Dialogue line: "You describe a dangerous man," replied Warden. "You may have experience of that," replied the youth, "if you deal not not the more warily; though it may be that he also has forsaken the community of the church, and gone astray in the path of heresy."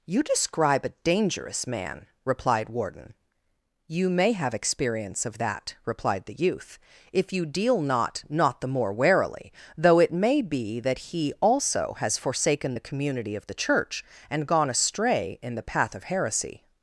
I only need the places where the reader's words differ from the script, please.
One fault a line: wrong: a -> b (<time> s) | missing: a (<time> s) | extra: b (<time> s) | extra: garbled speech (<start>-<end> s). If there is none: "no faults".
no faults